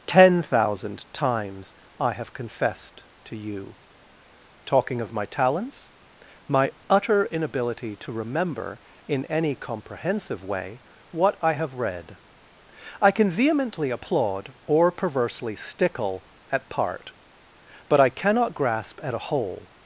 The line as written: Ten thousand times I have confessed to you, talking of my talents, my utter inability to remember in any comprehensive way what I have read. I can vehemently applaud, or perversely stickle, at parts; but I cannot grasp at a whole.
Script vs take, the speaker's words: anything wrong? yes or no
yes